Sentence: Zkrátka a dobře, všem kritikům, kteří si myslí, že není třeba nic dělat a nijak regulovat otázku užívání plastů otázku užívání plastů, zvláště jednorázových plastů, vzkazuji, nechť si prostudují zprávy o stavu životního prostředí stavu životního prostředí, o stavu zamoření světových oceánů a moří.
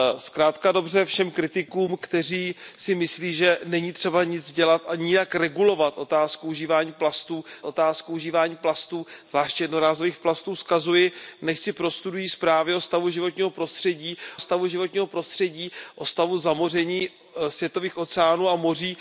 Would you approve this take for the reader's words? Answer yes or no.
yes